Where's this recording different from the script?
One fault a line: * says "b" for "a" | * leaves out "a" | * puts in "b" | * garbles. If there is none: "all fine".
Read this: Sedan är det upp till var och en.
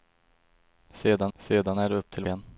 * puts in "sedan"
* leaves out "var och"